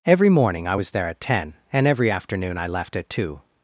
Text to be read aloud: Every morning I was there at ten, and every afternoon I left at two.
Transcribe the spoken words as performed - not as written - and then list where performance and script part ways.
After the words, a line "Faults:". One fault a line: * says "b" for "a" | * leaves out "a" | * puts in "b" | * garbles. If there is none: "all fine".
Every morning I was there at ten, and every afternoon I left at two.
Faults:
all fine